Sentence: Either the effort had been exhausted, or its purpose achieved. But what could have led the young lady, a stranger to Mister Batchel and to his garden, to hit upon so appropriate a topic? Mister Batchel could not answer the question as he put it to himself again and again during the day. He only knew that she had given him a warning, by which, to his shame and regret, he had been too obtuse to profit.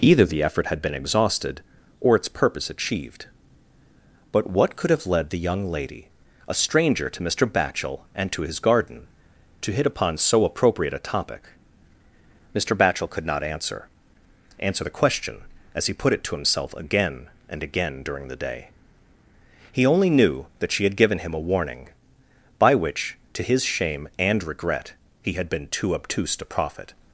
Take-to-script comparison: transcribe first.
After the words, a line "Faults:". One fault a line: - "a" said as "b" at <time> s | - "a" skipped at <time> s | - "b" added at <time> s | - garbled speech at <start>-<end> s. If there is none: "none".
Either the effort had been exhausted, or its purpose achieved. But what could have led the young lady, a stranger to Mister Batchel and to his garden, to hit upon so appropriate a topic? Mister Batchel could not answer answer the question as he put it to himself again and again during the day. He only knew that she had given him a warning, by which, to his shame and regret, he had been too obtuse to profit.
Faults:
- "answer" added at 14.6 s